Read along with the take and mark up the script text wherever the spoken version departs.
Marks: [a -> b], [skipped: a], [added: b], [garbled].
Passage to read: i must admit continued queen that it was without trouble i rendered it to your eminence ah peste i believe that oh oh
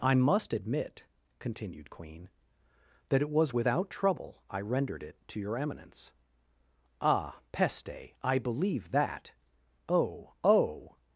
i must admit continued queen that it was without trouble i rendered it to your eminence ah peste i believe that oh oh